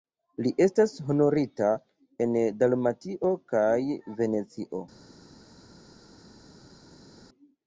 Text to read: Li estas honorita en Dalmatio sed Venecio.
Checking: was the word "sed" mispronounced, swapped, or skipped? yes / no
yes